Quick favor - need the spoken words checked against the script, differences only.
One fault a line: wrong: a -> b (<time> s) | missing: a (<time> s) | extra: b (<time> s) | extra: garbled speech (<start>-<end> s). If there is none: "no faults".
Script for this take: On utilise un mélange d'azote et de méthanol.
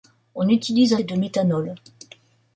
missing: mélange d'azote (1.0 s)